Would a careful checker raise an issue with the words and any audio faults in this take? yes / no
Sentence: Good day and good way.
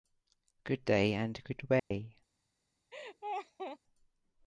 yes